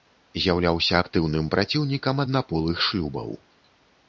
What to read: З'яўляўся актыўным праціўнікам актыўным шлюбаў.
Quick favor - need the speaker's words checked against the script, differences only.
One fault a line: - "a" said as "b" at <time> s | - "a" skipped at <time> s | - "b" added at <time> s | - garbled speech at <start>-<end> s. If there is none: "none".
- "актыўным" said as "аднаполых" at 2.2 s